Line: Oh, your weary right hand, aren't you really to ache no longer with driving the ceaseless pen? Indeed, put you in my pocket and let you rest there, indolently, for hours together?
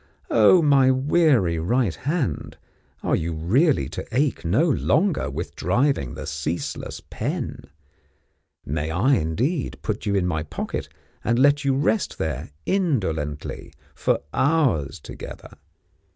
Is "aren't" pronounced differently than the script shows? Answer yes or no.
yes